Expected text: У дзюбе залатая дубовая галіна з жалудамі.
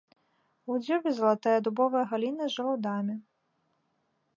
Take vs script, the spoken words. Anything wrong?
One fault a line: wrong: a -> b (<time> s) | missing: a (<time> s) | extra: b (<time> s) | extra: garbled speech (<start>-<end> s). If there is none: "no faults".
no faults